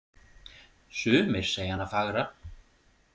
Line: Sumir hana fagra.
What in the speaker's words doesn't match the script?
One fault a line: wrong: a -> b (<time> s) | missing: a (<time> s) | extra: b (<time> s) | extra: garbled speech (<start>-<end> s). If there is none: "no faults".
extra: segja (1.5 s)